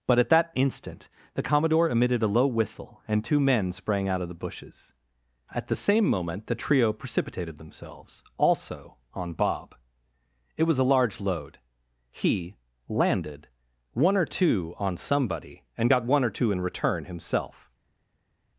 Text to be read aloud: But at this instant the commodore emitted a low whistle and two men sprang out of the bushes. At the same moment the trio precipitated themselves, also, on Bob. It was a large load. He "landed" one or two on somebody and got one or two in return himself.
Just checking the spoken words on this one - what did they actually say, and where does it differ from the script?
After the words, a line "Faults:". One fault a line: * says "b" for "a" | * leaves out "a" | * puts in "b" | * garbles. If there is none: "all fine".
But at that instant the commodore emitted a low whistle and two men sprang out of the bushes. At the same moment the trio precipitated themselves, also, on Bob. It was a large load. He "landed" one or two on somebody and got one or two in return himself.
Faults:
* says "that" for "this"